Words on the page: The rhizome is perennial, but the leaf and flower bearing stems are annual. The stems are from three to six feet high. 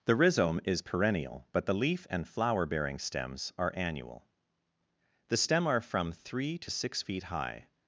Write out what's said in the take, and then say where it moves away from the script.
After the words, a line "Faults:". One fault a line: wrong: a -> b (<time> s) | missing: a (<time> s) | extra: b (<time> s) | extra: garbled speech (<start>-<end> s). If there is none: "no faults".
The rhizome is perennial, but the leaf and flower bearing stems are annual. The stem are from three to six feet high.
Faults:
wrong: stems -> stem (5.4 s)